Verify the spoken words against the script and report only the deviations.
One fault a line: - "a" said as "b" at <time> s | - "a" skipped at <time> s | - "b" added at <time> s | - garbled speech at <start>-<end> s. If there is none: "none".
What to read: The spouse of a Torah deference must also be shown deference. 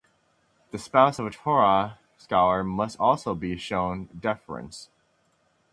- "deference" said as "scholar" at 2.2 s